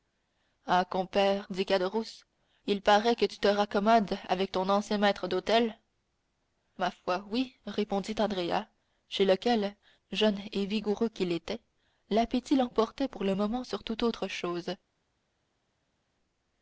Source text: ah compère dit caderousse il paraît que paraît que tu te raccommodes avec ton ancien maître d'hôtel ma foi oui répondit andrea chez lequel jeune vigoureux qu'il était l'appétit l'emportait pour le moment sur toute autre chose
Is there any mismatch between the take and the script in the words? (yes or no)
yes